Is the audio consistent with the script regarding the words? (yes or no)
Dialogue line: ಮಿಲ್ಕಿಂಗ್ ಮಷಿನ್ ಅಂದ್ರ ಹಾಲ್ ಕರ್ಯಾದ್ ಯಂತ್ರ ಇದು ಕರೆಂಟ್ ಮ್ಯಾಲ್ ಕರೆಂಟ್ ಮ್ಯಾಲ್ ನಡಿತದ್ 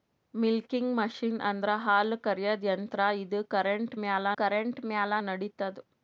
yes